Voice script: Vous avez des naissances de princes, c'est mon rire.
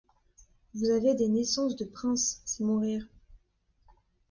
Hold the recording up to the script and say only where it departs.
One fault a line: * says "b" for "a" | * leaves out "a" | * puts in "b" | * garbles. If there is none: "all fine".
all fine